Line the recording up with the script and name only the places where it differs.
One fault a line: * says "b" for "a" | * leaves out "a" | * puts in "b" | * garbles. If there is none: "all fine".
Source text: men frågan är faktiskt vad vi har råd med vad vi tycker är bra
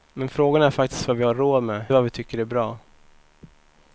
all fine